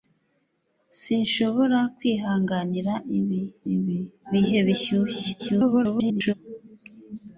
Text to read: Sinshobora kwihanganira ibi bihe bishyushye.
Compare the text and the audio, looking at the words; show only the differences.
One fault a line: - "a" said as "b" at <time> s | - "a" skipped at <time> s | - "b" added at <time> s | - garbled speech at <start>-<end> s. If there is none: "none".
- "ibi" added at 3.7 s
- garbled speech at 5.4-6.3 s